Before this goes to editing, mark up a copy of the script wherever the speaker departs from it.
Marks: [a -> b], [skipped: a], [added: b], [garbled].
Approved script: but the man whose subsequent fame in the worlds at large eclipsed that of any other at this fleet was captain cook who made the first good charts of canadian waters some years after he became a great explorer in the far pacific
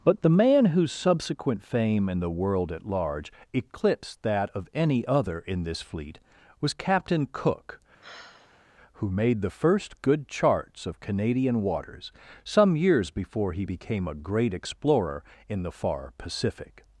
but the man whose subsequent fame in the [worlds -> world] at large eclipsed that of any other [at -> in] this fleet was captain cook who made the first good charts of canadian waters some years [after -> before] he became a great explorer in the far pacific